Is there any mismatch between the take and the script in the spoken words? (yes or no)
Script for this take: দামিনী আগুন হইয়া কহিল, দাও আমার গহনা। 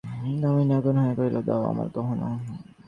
no